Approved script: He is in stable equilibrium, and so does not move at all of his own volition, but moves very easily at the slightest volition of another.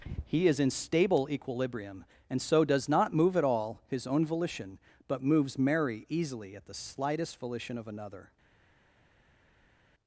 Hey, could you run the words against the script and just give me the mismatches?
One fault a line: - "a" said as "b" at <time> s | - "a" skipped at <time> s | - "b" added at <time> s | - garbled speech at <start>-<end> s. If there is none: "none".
- "of" skipped at 3.8 s
- "very" said as "merry" at 5.6 s